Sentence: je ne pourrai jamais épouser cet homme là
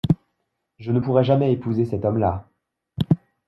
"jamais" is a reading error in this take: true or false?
false